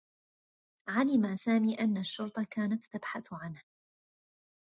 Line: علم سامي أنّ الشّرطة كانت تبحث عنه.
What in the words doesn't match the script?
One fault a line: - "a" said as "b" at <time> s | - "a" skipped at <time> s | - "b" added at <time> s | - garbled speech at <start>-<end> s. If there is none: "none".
none